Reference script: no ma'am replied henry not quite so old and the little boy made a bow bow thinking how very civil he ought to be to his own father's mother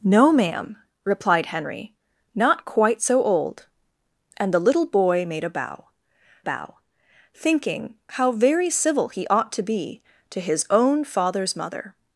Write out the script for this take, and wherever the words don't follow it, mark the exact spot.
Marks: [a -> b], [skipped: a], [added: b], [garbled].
no ma'am replied henry not quite so old and the little boy made a bow bow thinking how very civil he ought to be to his own father's mother